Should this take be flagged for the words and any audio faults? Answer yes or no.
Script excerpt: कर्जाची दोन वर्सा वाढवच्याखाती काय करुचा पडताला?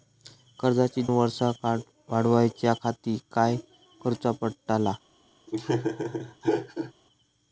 yes